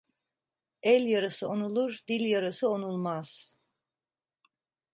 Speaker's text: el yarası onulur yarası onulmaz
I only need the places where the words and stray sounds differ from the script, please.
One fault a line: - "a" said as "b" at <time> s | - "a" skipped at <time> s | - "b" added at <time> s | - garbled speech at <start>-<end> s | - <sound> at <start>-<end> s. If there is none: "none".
- "dil" added at 2.1 s